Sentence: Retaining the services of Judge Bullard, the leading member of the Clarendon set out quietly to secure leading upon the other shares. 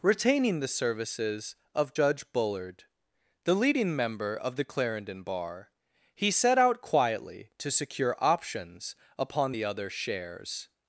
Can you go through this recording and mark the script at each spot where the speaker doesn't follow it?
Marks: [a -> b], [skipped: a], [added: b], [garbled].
Retaining the services of Judge Bullard, the leading member of the Clarendon [added: bar he] set out quietly to secure [leading -> options] upon the other shares.